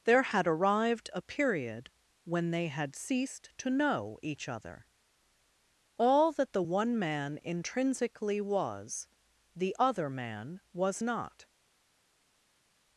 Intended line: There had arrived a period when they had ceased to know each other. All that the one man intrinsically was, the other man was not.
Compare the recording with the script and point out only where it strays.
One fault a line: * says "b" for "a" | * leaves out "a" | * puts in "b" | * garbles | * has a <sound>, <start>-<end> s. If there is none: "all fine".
all fine